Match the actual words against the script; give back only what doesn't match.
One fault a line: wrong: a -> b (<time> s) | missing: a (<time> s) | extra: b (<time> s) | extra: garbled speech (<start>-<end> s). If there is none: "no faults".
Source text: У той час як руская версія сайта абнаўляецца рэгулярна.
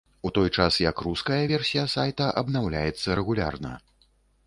no faults